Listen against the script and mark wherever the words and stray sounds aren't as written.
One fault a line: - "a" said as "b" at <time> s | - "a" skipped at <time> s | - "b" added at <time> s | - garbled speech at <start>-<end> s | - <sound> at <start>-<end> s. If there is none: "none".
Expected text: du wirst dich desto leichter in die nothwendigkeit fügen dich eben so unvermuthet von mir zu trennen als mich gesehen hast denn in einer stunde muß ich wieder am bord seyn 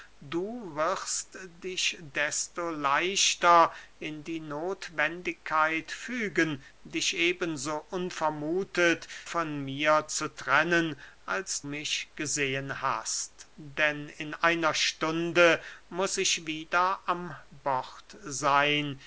none